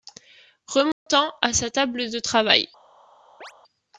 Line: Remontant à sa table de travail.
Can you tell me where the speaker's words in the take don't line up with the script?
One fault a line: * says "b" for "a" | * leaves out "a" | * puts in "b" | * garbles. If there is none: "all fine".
all fine